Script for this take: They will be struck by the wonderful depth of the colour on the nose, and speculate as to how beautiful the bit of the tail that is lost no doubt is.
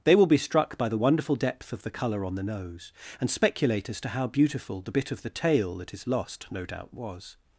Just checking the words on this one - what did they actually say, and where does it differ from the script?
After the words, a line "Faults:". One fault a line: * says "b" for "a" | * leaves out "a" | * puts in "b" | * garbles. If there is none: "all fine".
They will be struck by the wonderful depth of the colour on the nose, and speculate as to how beautiful the bit of the tail that is lost no doubt was.
Faults:
* says "was" for "is"